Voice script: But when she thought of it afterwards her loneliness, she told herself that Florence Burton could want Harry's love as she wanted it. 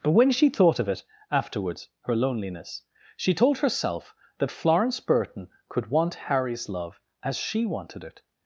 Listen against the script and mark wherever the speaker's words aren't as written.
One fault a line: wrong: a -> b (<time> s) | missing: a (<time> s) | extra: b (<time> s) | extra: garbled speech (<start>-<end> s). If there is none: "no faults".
no faults